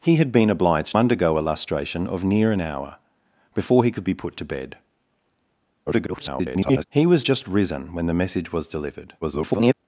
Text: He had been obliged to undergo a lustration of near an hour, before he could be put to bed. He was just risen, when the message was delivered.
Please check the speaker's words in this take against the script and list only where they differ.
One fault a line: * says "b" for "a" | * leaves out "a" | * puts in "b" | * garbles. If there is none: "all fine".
* leaves out "to"
* garbles
* garbles